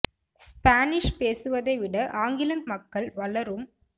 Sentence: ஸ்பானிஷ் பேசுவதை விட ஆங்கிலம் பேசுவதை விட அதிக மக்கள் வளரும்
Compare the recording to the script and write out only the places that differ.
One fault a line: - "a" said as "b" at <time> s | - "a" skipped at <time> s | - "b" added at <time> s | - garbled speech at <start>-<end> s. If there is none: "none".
- "பேசுவதை விட அதிக" skipped at 2.6 s